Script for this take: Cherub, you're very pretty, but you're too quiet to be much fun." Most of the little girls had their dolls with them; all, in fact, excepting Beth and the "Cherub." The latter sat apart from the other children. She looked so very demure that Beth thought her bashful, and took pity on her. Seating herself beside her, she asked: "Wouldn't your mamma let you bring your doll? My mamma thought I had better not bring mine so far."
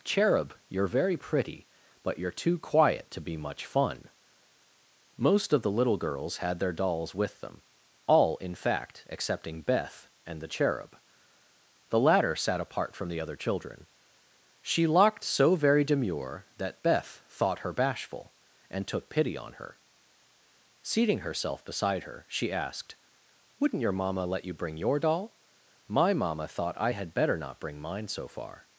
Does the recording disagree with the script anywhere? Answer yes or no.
yes